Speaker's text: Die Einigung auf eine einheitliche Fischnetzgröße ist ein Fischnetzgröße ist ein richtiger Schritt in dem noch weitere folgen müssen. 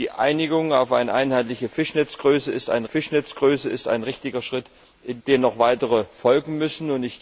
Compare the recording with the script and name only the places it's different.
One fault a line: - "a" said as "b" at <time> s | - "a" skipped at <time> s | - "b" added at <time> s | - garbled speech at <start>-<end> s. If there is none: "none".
none